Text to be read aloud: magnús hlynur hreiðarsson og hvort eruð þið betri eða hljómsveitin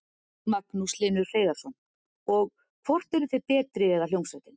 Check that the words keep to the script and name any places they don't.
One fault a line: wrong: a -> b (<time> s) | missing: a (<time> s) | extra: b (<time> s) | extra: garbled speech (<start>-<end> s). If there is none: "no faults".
no faults